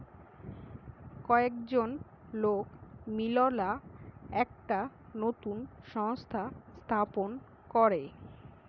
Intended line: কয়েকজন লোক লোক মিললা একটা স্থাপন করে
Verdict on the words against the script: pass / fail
fail